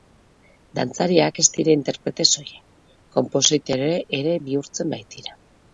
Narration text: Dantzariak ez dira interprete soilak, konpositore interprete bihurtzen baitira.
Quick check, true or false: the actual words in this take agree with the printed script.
false